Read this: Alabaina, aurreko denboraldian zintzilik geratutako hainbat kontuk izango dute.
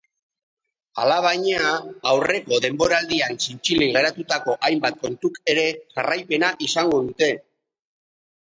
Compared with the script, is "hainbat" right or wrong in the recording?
right